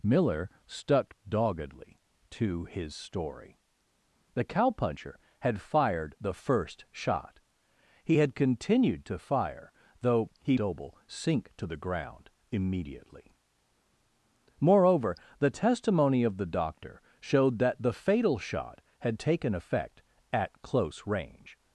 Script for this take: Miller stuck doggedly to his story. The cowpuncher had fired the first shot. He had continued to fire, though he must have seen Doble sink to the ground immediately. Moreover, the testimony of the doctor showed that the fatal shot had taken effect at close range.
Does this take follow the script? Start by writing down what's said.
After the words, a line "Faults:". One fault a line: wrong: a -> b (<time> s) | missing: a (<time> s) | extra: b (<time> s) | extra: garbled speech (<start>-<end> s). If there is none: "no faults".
Miller stuck doggedly to his story. The cowpuncher had fired the first shot. He had continued to fire, though he Doble sink to the ground immediately. Moreover, the testimony of the doctor showed that the fatal shot had taken effect at close range.
Faults:
missing: must have seen (10.6 s)